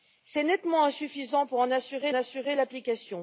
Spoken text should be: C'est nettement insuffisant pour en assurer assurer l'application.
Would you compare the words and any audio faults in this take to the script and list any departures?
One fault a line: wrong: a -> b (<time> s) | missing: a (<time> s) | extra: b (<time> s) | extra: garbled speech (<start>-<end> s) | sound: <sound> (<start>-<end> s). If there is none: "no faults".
no faults